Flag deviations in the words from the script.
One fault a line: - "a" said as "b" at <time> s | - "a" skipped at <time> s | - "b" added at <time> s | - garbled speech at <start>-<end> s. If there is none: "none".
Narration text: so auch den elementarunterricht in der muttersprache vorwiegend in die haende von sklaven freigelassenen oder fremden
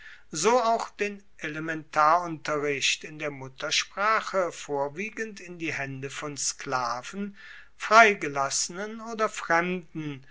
none